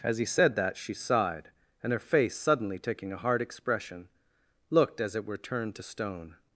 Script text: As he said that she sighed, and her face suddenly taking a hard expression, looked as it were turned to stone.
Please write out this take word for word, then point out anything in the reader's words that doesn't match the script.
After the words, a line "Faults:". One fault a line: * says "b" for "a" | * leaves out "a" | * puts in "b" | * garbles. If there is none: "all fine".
As he said that she sighed, and her face suddenly taking a hard expression, looked as it were turned to stone.
Faults:
all fine